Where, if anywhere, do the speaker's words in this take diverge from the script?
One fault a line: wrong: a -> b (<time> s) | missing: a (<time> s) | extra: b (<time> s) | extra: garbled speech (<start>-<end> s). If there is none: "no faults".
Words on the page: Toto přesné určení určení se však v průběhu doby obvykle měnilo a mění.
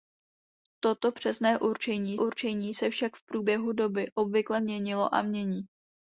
no faults